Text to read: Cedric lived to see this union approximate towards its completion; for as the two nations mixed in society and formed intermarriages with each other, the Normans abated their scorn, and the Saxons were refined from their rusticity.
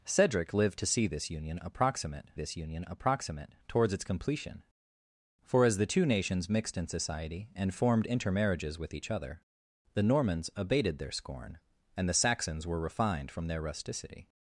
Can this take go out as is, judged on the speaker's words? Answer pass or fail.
fail